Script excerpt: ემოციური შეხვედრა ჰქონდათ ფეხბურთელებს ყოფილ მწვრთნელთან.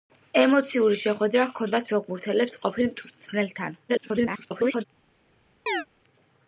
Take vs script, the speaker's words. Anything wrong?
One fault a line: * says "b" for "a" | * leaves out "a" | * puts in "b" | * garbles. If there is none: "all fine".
* garbles